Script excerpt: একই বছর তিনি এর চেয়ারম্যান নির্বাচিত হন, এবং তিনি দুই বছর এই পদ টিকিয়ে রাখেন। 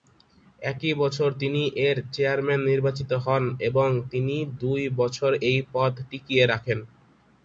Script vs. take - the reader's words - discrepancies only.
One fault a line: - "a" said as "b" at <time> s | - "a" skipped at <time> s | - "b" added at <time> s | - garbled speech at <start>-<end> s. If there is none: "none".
none